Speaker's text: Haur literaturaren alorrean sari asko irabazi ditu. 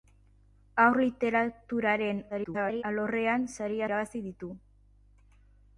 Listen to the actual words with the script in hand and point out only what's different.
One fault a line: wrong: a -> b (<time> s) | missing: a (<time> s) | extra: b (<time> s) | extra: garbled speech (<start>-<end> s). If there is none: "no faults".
extra: garbled speech (2.3-2.8 s)
missing: asko (3.8 s)